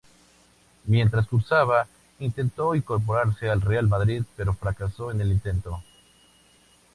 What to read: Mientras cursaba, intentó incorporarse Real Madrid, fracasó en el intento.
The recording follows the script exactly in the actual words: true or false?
false